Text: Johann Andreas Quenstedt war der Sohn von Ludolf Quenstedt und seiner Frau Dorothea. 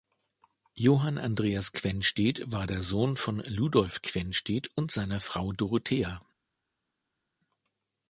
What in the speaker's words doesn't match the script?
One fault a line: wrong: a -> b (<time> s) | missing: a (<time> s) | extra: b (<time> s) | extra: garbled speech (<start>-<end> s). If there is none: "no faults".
no faults